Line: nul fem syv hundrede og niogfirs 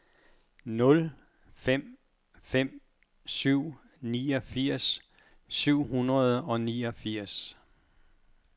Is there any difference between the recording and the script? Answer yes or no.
yes